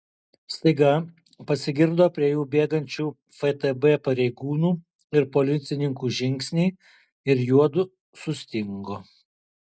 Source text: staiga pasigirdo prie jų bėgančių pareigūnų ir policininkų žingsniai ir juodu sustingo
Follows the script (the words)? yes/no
no